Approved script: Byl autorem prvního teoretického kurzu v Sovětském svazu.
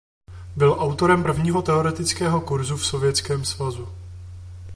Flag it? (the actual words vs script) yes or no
no